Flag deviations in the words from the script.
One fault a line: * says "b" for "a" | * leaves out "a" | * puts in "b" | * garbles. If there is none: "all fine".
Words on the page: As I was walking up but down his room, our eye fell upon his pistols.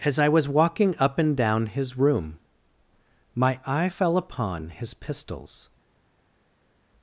* says "and" for "but"
* says "my" for "our"